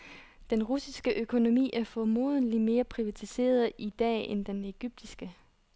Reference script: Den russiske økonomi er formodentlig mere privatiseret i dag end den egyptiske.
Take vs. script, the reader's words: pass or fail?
pass